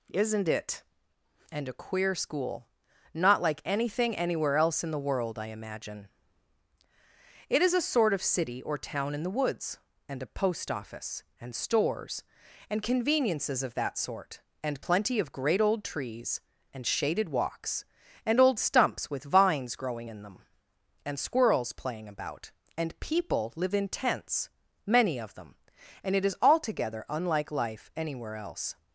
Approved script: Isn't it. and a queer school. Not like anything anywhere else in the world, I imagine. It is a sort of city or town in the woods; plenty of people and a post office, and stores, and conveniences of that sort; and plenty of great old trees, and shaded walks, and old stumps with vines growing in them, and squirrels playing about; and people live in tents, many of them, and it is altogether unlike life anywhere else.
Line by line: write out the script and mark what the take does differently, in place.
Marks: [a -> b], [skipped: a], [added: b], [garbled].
Isn't it. and a queer school. Not like anything anywhere else in the world, I imagine. It is a sort of city or town in the woods; [skipped: plenty of people] and a post office, and stores, and conveniences of that sort; and plenty of great old trees, and shaded walks, and old stumps with vines growing in them, and squirrels playing about; and people live in tents, many of them, and it is altogether unlike life anywhere else.